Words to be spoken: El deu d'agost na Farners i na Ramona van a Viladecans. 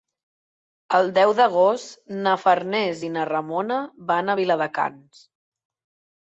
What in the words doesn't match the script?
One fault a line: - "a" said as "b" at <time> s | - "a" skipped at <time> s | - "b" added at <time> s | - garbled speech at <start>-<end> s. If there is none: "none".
none